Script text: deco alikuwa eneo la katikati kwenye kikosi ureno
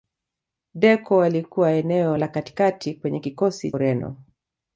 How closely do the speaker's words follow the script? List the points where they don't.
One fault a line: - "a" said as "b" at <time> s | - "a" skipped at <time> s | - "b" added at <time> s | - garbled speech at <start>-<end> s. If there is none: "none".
none